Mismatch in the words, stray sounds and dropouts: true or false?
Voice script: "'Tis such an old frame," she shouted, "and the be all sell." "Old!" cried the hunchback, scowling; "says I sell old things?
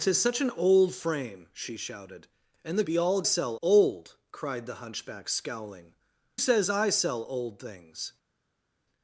false